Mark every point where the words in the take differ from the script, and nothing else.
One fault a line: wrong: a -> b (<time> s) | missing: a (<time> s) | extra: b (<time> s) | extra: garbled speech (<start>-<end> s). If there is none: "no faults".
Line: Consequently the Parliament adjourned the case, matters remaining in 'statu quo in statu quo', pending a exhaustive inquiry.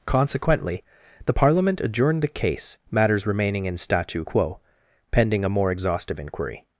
missing: in statu quo (4.6 s)
extra: more (5.5 s)